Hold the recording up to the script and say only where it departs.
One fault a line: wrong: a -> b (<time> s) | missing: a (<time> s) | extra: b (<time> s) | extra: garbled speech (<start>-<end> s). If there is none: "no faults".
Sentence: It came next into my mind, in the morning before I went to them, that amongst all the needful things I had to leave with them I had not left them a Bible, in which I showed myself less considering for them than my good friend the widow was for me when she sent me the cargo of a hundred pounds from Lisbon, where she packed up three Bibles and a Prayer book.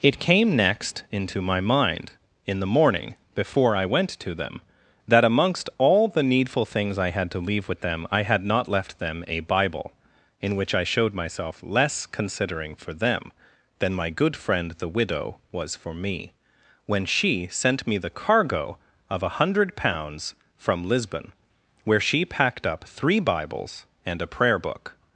no faults